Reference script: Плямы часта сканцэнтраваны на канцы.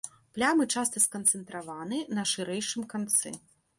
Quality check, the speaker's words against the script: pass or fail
fail